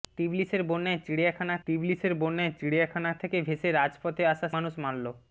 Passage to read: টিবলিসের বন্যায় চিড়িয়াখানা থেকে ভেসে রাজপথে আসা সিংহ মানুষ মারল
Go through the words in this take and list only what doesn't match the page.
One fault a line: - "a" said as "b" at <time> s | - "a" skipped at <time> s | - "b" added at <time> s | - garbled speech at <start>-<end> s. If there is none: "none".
- "টিবলিসের বন্যায় চিড়িয়াখানা" added at 1.7 s
- "সিংহ" skipped at 4.5 s